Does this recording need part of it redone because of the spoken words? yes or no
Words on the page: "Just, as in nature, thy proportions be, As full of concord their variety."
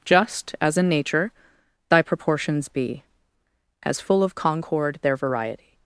no